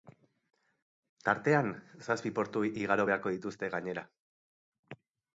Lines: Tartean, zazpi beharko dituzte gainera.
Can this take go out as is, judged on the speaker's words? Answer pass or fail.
fail